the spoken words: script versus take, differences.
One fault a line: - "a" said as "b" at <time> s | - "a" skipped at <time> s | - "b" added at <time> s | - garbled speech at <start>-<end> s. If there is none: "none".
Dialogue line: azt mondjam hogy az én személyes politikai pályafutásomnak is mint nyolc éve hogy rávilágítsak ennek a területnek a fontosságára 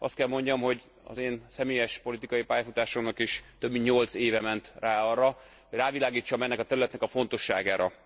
- "kell" added at 0.1 s
- "több" added at 3.6 s
- "ment rá arra" added at 4.4 s